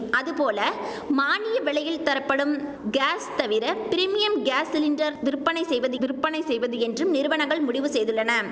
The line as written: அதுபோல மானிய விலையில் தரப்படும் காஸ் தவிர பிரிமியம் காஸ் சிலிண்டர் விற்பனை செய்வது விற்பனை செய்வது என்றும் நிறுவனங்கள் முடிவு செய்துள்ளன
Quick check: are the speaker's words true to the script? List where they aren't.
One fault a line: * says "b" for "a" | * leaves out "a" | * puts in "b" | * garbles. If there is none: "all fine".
all fine